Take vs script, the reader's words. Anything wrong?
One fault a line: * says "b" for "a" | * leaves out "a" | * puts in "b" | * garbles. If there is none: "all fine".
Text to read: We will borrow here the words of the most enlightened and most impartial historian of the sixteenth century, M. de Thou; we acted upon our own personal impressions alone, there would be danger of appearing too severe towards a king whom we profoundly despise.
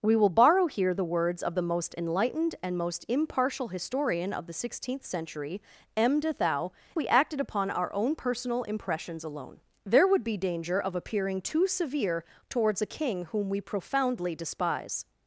all fine